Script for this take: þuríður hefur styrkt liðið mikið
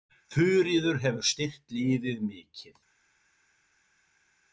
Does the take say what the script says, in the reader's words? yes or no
yes